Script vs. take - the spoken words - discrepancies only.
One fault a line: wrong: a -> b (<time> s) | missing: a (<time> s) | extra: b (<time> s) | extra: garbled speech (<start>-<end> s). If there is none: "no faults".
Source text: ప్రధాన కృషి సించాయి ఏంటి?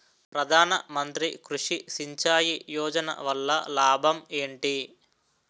extra: మంత్రి (0.9 s)
extra: యోజన వల్ల లాభం (2.7 s)